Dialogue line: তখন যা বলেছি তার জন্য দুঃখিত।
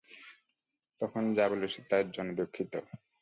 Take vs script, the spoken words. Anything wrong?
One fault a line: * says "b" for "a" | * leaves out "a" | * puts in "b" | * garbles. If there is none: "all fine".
all fine